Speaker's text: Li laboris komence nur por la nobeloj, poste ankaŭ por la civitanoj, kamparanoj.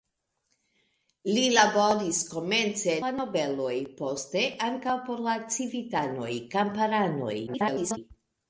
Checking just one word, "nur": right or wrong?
wrong